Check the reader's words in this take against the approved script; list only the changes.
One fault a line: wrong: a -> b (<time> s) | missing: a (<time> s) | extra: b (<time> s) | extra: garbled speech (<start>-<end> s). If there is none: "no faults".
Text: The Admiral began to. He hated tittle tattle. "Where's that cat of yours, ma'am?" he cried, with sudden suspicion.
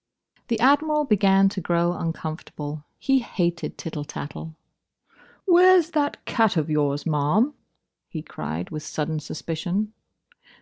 extra: grow uncomfortable (1.6 s)